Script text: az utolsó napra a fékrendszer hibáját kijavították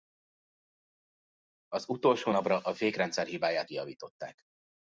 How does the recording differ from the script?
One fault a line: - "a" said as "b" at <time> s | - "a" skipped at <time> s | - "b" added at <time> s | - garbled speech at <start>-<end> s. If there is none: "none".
none